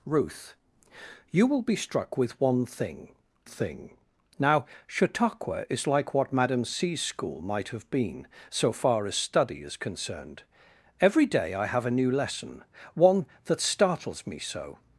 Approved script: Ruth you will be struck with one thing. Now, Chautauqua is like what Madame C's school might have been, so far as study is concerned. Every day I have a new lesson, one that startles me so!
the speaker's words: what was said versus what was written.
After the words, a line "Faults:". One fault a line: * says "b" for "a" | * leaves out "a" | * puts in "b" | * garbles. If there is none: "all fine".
Ruth you will be struck with one thing thing. Now, Chautauqua is like what Madame C's school might have been, so far as study is concerned. Every day I have a new lesson, one that startles me so!
Faults:
* puts in "thing"